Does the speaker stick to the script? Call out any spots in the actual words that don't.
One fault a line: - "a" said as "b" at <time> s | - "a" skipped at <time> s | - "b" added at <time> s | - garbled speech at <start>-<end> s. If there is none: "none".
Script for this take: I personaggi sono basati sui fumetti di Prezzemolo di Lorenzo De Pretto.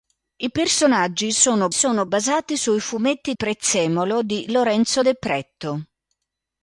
- "sono" added at 1.7 s
- "di" skipped at 3.3 s